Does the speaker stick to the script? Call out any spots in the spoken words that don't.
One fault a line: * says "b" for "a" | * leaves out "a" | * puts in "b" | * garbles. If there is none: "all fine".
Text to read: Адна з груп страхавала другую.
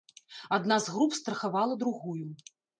all fine